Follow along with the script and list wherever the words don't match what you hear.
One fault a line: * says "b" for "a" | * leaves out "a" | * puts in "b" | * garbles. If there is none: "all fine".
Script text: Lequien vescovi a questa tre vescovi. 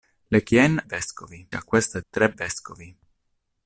all fine